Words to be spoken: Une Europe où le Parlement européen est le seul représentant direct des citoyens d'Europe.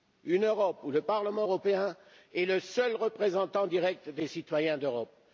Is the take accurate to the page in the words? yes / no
yes